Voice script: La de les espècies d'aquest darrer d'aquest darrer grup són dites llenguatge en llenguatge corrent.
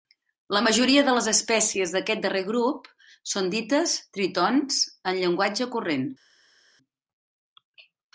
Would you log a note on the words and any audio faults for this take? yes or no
yes